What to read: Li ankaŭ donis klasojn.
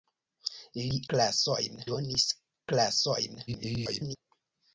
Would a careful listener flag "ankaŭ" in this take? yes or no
yes